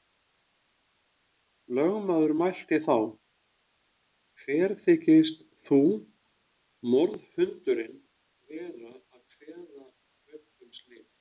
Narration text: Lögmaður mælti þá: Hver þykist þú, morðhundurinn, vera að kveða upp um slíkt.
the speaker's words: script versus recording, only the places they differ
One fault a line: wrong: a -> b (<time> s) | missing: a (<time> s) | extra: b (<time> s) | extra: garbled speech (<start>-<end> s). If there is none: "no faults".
no faults